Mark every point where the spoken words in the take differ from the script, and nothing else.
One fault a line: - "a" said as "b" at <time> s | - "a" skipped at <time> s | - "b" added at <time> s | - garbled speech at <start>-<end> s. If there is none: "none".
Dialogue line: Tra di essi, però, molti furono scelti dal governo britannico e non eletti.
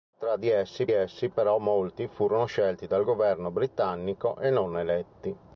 - "essi" added at 0.9 s